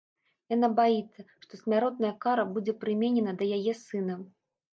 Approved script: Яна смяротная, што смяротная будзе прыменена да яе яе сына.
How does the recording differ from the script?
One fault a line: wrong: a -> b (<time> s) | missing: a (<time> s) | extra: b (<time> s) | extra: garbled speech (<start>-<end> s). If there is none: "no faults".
wrong: смяротная -> баіцца (0.8 s)
extra: кара (2.3 s)
missing: яе (3.7 s)